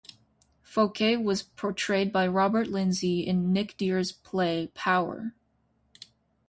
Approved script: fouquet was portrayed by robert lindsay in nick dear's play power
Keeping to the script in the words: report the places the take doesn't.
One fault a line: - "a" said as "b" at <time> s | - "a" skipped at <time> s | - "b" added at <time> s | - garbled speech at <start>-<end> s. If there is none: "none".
none